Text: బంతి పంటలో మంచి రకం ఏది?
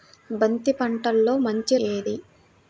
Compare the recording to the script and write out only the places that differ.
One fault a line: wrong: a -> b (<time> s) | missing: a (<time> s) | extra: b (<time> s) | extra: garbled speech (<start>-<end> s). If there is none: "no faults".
missing: రకం (1.8 s)